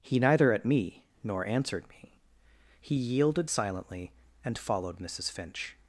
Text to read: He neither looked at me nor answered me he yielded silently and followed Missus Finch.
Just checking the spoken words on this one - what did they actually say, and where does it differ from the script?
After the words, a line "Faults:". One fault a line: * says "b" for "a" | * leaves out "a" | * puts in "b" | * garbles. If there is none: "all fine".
He neither at me nor answered me he yielded silently and followed Missus Finch.
Faults:
* leaves out "looked"